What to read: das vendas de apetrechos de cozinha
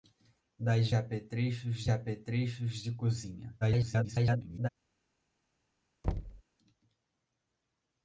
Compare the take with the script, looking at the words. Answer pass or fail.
fail